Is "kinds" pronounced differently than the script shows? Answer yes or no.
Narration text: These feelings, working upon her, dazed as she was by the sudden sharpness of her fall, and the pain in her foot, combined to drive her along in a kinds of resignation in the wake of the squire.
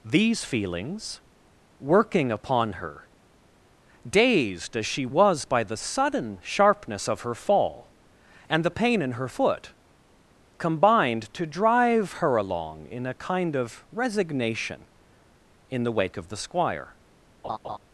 yes